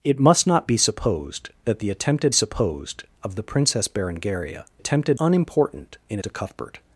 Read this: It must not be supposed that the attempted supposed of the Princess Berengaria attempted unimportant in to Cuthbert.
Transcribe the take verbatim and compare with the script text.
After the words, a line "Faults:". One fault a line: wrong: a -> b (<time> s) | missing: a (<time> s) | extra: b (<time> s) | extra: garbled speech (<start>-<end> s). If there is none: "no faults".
It must not be supposed that the attempted supposed of the Princess Berengaria attempted unimportant in to Cuthbert.
Faults:
no faults